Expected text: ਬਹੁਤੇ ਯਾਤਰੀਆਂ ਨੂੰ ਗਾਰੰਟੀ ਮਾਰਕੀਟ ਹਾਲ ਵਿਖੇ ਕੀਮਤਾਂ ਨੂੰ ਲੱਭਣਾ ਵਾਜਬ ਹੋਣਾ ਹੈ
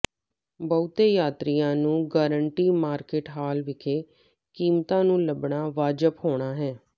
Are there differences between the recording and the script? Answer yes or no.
no